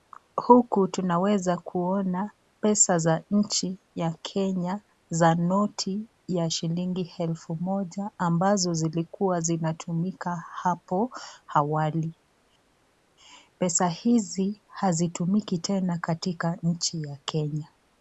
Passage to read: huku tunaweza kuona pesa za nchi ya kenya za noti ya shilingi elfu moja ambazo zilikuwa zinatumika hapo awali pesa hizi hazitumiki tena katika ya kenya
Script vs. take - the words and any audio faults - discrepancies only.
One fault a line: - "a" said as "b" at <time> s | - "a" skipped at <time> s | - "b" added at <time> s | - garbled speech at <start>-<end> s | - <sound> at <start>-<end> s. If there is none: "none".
- "nchi" added at 16.6 s